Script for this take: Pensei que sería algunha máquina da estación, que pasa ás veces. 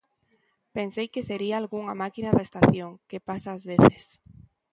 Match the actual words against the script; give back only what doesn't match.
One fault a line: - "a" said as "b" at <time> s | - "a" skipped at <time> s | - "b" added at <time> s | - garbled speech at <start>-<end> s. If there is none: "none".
none